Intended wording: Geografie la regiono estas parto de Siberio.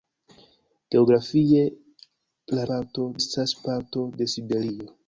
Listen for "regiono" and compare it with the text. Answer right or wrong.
wrong